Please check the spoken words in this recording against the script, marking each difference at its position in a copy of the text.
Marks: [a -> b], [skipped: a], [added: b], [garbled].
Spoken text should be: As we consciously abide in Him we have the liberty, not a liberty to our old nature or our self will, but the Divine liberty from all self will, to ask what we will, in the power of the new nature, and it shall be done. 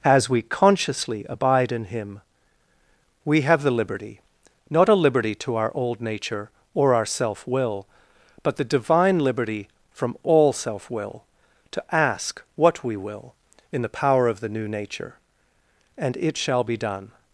As we consciously abide in Him we have the liberty, not a liberty to our old nature or our self will, but the Divine liberty from all self will, to ask what we will, in the power of the new nature, and it shall be done.